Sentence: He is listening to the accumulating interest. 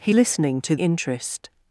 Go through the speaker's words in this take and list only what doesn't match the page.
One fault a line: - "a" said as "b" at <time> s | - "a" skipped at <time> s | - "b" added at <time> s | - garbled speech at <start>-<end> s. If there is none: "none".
- "is" skipped at 0.1 s
- "the accumulating" skipped at 0.8 s